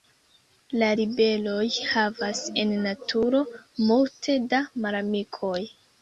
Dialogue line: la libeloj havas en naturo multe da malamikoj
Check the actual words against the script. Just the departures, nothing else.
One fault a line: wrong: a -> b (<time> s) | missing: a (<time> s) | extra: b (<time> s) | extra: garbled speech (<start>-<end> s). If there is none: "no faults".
no faults